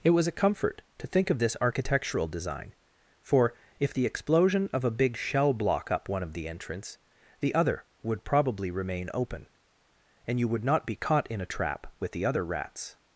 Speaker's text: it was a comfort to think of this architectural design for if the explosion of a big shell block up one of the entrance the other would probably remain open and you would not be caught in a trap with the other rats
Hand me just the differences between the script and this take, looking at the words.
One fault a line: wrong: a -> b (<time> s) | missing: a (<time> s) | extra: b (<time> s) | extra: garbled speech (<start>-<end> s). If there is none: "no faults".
no faults